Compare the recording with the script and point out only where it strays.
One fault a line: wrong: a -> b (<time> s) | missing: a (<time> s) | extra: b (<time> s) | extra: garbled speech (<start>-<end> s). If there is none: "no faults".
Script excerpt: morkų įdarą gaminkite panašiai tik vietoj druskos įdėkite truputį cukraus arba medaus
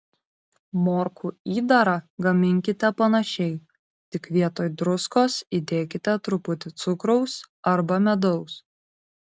no faults